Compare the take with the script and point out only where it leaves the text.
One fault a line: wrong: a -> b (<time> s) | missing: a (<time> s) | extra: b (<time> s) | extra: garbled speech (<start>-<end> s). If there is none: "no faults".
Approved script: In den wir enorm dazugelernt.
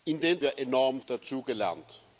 no faults